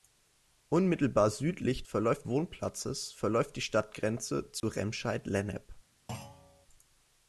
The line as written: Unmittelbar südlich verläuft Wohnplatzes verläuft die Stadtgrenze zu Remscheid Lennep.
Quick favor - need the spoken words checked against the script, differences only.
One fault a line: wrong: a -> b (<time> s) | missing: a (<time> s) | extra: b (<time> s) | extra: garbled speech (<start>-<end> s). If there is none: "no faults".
no faults